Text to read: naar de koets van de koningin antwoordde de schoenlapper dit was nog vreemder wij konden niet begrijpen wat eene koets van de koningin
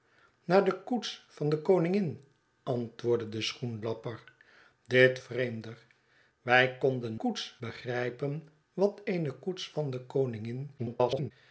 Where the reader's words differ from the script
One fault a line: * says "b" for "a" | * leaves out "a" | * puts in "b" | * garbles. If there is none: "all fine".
* leaves out "was nog"
* says "koets" for "niet"
* garbles